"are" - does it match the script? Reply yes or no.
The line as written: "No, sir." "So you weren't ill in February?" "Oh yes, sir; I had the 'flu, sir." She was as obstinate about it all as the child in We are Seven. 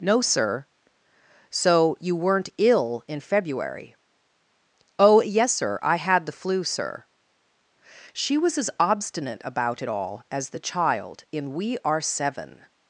yes